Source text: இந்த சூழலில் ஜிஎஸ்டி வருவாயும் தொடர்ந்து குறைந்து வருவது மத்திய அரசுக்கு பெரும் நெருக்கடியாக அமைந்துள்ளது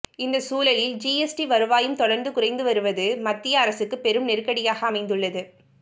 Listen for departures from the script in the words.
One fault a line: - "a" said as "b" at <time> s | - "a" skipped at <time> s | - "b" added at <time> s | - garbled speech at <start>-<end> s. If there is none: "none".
none